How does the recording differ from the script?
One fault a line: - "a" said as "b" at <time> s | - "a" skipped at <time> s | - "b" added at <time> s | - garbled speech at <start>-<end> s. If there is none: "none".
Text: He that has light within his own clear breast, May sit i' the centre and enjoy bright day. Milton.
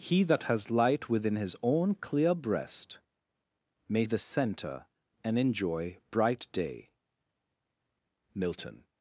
- "sit i" skipped at 4.0 s